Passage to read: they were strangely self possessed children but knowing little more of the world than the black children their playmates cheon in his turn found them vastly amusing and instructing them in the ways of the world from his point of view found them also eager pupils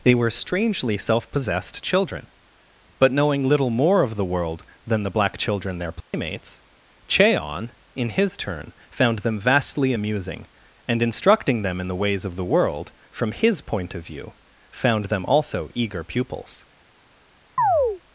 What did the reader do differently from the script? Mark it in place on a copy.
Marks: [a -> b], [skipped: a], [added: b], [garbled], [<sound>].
they were strangely self possessed children but knowing little more of the world than the black children their playmates [dropout] cheon in his turn found them vastly amusing and instructing them in the ways of the world from his point of view found them also eager pupils [chirp]